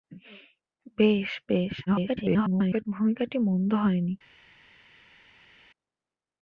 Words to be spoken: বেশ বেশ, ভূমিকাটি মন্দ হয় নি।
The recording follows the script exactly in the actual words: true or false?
false